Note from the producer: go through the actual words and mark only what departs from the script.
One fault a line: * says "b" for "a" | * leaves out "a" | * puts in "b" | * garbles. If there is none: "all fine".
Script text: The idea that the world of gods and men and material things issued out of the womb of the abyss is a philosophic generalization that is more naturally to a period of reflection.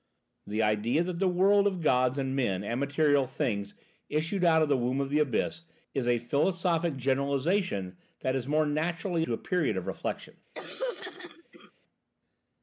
all fine